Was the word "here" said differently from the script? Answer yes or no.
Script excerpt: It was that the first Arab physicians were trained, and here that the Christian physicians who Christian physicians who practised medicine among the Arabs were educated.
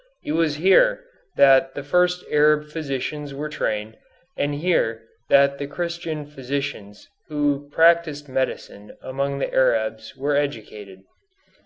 no